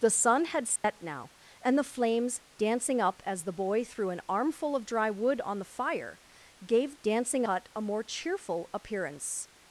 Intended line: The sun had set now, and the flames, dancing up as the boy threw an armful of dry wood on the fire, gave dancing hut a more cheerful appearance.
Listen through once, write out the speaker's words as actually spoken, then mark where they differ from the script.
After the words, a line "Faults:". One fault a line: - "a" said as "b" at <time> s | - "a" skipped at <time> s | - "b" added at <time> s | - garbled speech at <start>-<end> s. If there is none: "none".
The sun had set now, and the flames, dancing up as the boy threw an armful of dry wood on the fire, gave dancing hut a more cheerful appearance.
Faults:
none